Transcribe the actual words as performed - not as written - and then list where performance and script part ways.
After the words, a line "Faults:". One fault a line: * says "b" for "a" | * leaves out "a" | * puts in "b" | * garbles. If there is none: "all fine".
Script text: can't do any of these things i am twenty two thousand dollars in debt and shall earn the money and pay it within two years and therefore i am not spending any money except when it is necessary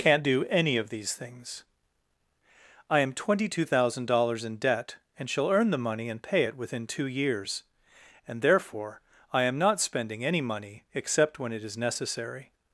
can't do any of these things i am twenty two thousand dollars in debt and shall earn the money and pay it within two years and therefore i am not spending any money except when it is necessary
Faults:
all fine